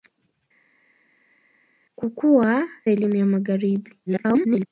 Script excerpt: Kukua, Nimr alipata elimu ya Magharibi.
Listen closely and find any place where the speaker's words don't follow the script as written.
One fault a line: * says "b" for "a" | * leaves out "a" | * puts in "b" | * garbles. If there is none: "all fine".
* leaves out "Nimr alipata"
* garbles